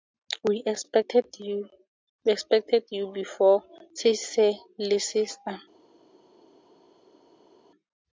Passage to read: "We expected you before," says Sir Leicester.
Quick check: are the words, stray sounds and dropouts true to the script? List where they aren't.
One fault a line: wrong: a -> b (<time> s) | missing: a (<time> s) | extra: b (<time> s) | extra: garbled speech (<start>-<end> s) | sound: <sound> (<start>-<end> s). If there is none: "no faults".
no faults